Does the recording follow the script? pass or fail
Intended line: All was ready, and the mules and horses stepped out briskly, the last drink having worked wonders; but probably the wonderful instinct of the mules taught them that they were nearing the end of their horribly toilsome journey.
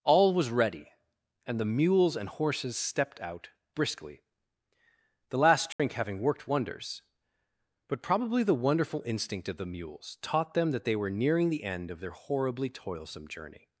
pass